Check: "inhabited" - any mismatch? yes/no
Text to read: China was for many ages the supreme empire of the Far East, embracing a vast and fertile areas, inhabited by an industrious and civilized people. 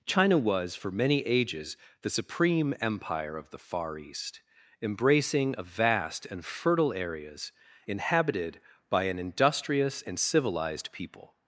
no